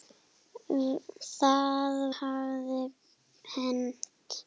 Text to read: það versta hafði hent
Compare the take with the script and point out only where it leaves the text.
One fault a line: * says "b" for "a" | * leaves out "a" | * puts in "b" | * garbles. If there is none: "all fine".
* leaves out "versta"